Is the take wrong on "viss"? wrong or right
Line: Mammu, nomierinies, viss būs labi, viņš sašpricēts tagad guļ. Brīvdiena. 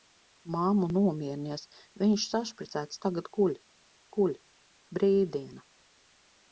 wrong